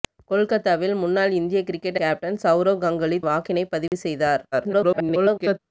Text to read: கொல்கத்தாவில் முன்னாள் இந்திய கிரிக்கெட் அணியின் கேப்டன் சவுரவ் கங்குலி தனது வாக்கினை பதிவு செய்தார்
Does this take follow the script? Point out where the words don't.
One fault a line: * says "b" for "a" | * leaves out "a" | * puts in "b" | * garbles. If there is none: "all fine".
* leaves out "அணியின்"
* leaves out "தனது"
* garbles